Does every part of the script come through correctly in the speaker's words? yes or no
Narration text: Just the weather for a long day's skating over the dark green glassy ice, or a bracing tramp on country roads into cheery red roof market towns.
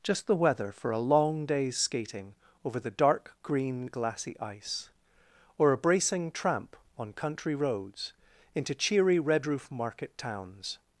yes